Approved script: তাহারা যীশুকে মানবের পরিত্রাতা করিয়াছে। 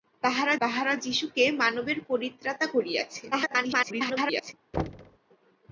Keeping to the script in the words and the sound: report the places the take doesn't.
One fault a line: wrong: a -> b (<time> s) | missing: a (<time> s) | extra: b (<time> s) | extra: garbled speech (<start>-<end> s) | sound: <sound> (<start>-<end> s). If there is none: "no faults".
extra: তাহারা (0.6 s)
extra: garbled speech (3.3-4.5 s)
sound: thud (4.7-5.2 s)